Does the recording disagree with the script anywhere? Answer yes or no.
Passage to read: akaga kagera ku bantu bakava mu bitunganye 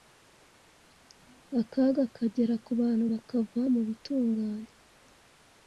no